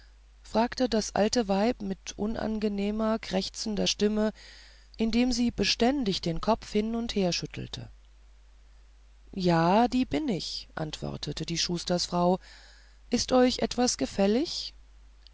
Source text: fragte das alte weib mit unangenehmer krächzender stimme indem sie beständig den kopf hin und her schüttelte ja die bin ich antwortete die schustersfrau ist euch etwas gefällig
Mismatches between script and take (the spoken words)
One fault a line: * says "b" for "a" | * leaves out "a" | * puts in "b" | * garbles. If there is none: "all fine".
all fine